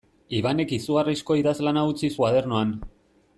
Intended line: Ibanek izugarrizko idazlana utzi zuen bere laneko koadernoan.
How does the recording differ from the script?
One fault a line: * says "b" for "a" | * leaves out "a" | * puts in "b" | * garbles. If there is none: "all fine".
* leaves out "zuen bere laneko"